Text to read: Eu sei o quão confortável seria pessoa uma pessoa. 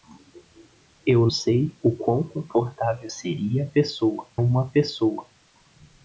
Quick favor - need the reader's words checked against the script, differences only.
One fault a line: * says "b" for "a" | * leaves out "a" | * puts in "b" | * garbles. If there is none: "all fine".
all fine